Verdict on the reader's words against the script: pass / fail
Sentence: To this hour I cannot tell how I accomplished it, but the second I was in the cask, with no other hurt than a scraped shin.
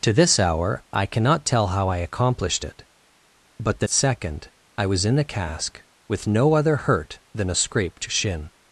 pass